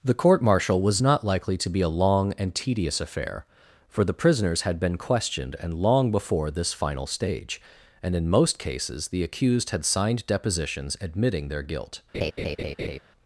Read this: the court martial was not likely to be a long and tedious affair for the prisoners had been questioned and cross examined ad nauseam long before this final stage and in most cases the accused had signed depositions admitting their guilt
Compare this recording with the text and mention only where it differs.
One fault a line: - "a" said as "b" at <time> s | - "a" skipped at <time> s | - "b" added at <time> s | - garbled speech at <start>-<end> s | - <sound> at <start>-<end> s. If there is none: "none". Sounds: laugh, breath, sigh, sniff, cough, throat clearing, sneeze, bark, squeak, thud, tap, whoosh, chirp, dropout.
- "cross examined ad nauseam" skipped at 5.7 s
- laugh at 12.1-13.0 s